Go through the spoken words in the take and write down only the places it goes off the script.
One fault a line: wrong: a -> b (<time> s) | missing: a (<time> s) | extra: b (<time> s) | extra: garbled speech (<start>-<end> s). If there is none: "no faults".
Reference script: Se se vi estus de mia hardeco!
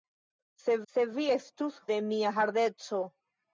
no faults